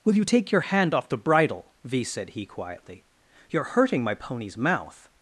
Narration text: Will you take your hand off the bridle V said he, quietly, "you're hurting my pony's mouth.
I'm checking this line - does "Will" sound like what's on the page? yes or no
yes